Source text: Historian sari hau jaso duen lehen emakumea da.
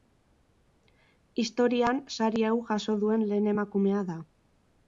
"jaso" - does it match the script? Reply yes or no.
yes